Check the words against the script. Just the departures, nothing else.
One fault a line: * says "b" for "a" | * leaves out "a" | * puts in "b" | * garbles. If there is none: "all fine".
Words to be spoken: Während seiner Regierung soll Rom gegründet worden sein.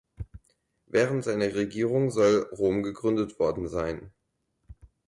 all fine